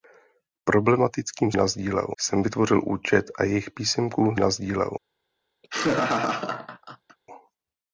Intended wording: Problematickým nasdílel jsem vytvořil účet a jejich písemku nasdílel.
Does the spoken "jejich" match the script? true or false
true